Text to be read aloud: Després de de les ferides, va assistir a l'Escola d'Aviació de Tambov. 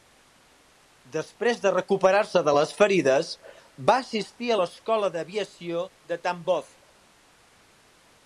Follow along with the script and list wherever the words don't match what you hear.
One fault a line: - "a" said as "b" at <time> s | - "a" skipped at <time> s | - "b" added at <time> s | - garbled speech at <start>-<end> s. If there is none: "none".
- "recuperar se" added at 1.7 s